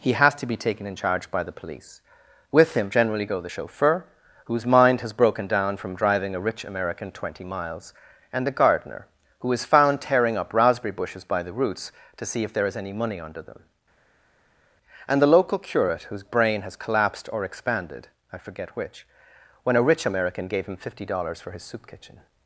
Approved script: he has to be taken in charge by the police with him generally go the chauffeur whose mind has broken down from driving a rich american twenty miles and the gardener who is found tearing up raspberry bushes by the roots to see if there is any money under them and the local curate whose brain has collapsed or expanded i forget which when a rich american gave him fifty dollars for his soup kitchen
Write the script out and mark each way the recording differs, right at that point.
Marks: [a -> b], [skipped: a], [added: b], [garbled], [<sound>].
he has to be taken in charge by the police with him generally go the chauffeur whose mind has broken down from driving a rich american twenty miles and the gardener who is found tearing up raspberry bushes by the roots to see if there is any money under them and the local curate whose brain has collapsed or expanded i forget which when a rich american gave him fifty dollars for his soup kitchen